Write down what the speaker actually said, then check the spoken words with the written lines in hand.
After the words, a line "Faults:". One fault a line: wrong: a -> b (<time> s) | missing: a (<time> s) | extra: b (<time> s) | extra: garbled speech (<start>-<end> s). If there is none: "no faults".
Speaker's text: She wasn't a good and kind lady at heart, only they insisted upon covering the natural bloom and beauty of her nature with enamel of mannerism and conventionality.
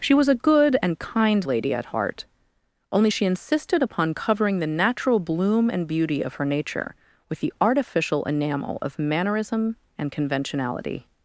She was a good and kind lady at heart, only she insisted upon covering the natural bloom and beauty of her nature with the artificial enamel of mannerism and conventionality.
Faults:
wrong: wasn't -> was (0.1 s)
wrong: they -> she (3.1 s)
extra: the artificial (7.4 s)